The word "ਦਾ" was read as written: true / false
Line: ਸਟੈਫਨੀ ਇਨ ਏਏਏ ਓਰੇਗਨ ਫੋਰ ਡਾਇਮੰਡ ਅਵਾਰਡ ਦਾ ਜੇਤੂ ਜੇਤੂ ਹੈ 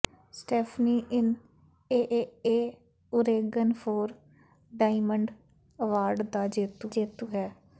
true